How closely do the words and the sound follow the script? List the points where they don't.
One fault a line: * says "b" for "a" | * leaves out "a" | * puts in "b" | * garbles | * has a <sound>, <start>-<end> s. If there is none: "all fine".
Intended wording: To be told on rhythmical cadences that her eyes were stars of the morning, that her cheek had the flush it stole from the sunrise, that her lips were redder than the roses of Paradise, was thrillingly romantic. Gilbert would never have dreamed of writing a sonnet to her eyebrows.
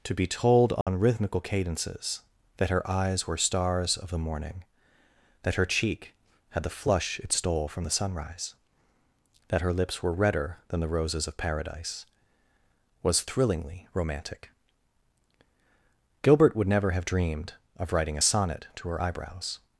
* has a dropout, 0.8-0.9 s